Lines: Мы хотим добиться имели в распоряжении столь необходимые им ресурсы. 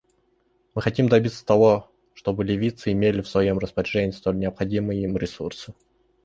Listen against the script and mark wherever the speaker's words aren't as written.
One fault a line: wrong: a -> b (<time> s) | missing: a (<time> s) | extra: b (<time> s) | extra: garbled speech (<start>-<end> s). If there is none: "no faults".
extra: того чтобы ливийцы (1.5 s)
extra: своем (3.3 s)